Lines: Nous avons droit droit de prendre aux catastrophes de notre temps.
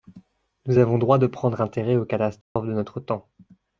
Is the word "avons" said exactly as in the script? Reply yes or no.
yes